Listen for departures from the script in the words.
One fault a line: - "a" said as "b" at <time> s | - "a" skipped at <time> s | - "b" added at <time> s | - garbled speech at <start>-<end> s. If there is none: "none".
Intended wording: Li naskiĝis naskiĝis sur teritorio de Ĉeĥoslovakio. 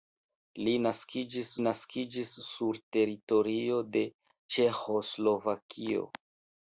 none